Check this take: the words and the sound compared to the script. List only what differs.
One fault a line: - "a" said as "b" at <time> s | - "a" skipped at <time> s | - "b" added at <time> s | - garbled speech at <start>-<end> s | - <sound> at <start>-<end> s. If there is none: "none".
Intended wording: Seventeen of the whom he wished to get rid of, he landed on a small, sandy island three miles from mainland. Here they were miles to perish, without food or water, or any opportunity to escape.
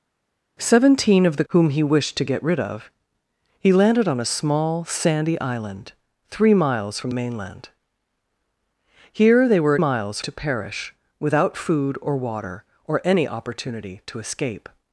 none